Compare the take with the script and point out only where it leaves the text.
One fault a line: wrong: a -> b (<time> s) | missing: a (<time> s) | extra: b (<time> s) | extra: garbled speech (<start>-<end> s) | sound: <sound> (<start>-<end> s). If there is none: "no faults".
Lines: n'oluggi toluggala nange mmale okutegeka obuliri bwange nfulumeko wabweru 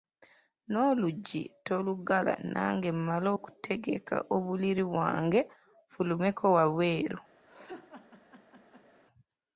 sound: laugh (7.5-9.0 s)